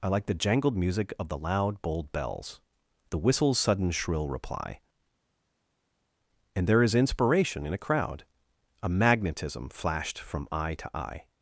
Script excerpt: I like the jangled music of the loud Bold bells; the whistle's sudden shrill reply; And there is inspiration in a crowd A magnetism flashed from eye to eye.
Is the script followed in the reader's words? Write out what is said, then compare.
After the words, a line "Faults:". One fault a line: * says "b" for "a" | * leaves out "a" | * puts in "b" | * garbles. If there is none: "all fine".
I like the jangled music of the loud Bold bells; the whistle's sudden shrill reply; And there is inspiration in a crowd A magnetism flashed from eye to eye.
Faults:
all fine